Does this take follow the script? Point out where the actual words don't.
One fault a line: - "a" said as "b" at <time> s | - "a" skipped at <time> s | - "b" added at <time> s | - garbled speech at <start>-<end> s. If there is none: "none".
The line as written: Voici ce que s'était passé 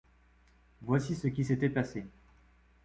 - "que" said as "qui" at 1.3 s